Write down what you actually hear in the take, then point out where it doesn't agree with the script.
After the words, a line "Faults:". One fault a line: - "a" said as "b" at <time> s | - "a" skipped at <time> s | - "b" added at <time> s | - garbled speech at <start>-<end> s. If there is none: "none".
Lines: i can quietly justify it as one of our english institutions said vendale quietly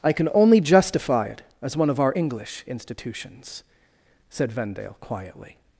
i can only justify it as one of our english institutions said vendale quietly
Faults:
- "quietly" said as "only" at 0.3 s